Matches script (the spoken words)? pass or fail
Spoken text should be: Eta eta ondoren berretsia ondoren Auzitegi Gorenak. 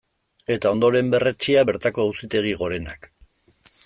fail